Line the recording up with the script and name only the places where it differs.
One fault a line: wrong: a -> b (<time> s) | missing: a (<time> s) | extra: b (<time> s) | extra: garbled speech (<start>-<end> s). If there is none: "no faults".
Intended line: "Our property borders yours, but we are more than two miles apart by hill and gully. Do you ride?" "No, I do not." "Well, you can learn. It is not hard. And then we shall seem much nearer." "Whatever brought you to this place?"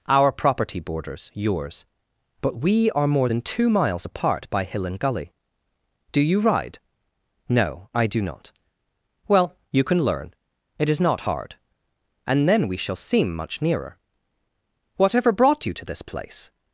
no faults